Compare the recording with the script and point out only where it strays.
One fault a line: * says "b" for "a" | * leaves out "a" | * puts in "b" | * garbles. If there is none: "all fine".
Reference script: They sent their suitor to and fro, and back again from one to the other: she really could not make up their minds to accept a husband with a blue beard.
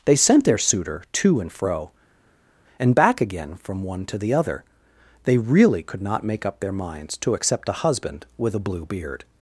* says "they" for "she"